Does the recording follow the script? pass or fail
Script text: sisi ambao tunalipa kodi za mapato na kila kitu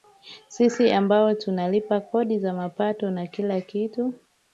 pass